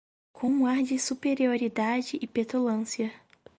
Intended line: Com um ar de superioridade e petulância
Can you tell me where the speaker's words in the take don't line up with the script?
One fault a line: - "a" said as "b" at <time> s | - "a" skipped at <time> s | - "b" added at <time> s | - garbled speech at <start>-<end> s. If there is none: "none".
none